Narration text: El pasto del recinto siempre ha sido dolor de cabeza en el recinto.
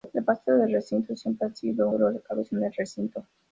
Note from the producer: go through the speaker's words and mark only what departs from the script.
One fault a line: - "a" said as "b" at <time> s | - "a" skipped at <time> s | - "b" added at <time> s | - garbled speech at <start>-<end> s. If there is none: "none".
none